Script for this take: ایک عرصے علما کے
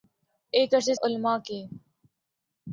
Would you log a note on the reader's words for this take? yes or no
no